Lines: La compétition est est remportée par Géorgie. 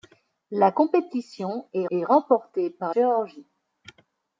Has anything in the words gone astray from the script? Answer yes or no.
no